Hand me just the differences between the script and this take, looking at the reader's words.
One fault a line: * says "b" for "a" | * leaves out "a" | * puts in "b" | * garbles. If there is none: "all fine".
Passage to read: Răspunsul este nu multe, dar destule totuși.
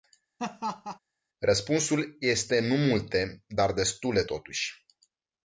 all fine